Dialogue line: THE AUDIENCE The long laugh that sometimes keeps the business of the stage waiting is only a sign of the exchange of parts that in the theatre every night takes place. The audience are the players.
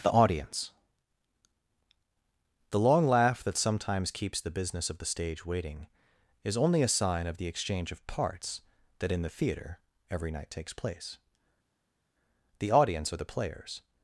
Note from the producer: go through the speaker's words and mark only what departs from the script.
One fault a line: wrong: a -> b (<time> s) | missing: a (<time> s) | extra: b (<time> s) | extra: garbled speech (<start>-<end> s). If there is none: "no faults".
no faults